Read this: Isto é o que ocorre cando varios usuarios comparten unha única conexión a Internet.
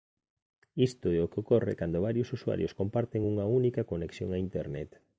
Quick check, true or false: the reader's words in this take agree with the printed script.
true